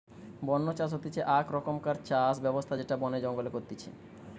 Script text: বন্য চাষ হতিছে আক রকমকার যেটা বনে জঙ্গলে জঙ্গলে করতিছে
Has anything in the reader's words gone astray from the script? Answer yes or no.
yes